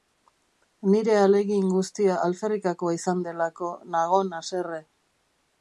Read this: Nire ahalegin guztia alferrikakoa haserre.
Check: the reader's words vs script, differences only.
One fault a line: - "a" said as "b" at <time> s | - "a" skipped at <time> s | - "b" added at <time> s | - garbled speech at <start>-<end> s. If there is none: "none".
- "izan delako nagon" added at 3.0 s